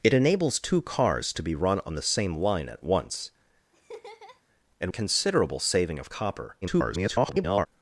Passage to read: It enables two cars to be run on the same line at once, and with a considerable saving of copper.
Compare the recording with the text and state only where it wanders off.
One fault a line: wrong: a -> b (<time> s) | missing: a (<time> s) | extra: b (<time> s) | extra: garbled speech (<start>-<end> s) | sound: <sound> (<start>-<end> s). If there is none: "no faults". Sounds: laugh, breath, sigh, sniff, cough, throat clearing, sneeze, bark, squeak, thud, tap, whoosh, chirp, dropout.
sound: laugh (3.7-4.4 s)
missing: with (4.9 s)
extra: garbled speech (6.6-7.7 s)